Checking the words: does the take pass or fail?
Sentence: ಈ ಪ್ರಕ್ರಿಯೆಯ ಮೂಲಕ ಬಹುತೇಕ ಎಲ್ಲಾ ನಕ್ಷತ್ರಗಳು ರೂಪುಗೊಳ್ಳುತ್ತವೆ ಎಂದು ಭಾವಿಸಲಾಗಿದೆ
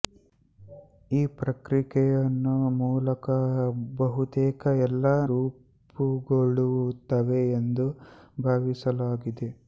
fail